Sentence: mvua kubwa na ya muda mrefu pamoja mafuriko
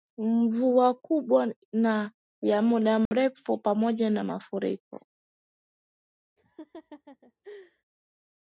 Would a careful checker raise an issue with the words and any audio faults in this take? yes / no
yes